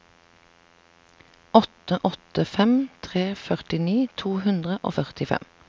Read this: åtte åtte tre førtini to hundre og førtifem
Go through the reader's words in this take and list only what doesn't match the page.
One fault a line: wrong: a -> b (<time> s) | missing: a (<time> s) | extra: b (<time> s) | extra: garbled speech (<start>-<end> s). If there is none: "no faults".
extra: fem (2.5 s)